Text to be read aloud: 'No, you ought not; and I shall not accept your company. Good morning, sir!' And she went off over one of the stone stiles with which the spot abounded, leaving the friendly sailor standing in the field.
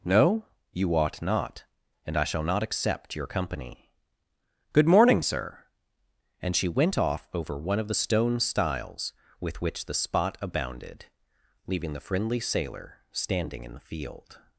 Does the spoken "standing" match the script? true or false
true